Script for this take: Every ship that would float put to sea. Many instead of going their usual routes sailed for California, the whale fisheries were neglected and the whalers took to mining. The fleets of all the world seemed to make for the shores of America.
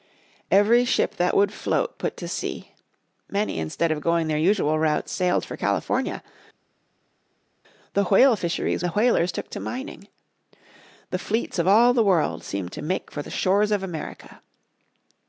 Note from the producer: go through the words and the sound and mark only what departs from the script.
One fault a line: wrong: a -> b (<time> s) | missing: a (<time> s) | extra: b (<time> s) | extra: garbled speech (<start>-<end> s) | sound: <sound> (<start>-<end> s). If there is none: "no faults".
missing: were neglected and (8.8 s)